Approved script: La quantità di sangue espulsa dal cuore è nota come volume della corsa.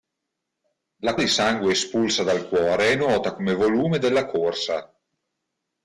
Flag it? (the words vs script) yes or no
yes